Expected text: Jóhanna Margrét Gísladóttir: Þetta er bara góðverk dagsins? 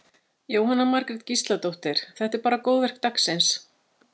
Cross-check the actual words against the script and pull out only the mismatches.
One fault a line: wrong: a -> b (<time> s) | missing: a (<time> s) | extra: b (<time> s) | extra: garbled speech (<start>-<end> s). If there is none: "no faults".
no faults